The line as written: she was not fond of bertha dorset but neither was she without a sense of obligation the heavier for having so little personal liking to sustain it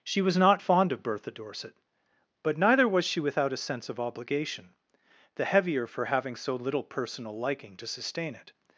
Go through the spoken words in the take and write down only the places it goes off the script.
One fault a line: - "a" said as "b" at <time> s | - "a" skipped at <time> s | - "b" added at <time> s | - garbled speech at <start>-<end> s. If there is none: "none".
none